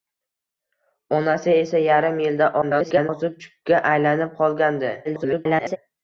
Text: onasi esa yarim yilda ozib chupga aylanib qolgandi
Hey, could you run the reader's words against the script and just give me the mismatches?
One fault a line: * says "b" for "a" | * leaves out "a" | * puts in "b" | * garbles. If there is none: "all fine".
* garbles
* garbles